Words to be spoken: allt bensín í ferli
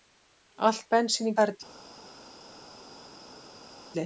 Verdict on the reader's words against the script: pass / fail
pass